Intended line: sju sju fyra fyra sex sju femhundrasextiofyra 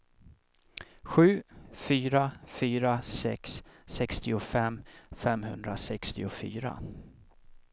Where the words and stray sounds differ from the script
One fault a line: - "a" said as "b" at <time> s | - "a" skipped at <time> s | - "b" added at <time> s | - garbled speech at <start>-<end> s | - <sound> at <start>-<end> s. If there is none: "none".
- "sju" skipped at 1.4 s
- "sju" said as "sextiofem" at 3.8 s